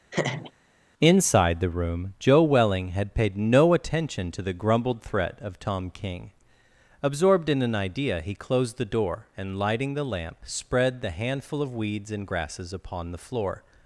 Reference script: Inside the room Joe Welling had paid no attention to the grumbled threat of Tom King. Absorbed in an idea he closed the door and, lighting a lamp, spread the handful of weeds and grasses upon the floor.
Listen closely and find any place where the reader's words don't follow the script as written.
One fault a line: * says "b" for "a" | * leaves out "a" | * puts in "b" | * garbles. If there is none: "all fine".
* says "the" for "a"